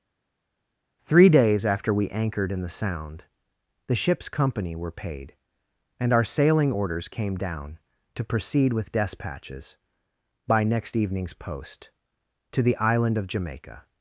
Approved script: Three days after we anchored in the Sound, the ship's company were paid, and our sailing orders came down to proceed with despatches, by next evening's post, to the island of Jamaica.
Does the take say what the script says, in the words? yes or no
yes